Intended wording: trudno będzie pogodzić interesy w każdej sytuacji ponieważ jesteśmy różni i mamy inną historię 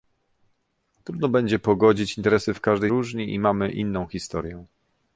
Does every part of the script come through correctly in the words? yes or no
no